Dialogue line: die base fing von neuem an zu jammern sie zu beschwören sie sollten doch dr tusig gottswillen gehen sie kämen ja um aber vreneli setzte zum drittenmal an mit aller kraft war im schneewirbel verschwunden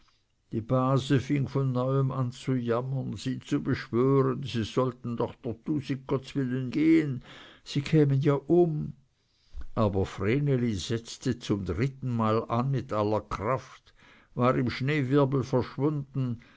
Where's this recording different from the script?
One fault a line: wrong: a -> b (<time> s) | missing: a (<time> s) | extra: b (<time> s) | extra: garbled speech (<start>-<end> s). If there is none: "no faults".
no faults